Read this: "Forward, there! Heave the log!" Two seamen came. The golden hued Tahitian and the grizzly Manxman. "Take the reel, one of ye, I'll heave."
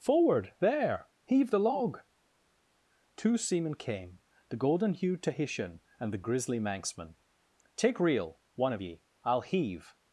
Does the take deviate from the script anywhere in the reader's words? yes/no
yes